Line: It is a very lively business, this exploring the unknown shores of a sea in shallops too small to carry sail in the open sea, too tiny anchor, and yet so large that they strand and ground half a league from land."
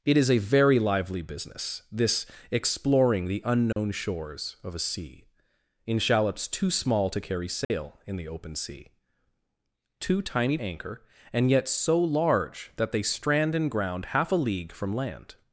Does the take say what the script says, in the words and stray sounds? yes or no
no